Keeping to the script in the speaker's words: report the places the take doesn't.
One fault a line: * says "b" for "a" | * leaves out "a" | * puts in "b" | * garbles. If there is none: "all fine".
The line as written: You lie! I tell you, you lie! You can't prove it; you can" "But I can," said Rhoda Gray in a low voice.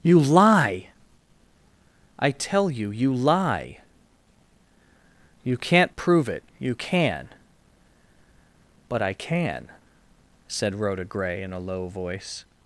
all fine